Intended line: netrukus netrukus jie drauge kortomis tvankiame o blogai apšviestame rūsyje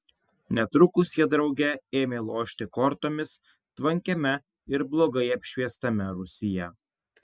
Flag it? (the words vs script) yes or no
yes